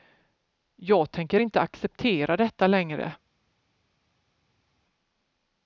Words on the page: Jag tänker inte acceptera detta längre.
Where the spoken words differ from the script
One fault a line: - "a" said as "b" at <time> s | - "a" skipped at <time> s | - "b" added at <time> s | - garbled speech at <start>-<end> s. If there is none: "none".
none